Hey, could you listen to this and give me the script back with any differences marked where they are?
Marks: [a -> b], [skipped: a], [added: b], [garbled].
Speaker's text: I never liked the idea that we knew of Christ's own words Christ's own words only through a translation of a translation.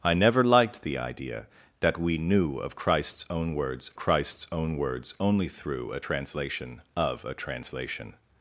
I never liked the idea that we knew of Christ's own words Christ's own words only through a translation of a translation.